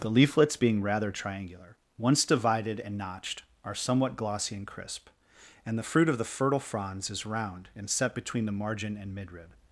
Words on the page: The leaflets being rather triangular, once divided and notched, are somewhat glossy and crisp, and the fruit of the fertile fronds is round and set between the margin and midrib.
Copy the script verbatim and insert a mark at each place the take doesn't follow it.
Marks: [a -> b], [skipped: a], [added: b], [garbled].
The leaflets being rather triangular, once divided and notched, are somewhat glossy and crisp, and the fruit of the fertile fronds is round and set between the margin and midrib.